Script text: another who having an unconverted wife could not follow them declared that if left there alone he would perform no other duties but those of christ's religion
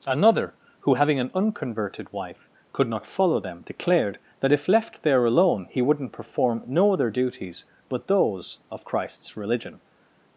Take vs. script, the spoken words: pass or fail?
fail